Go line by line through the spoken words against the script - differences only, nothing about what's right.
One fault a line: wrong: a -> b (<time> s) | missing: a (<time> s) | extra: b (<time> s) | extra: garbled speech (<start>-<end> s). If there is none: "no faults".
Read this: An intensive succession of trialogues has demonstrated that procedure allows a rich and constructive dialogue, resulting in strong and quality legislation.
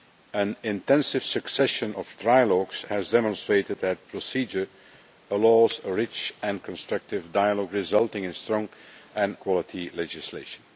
no faults